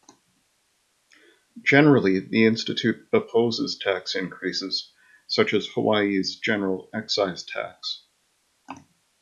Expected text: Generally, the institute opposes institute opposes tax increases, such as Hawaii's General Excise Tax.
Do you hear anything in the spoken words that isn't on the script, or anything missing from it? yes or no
yes